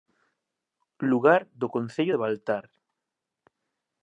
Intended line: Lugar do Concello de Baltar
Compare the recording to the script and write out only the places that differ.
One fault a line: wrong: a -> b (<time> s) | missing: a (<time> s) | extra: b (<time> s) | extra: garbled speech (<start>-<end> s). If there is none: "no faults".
no faults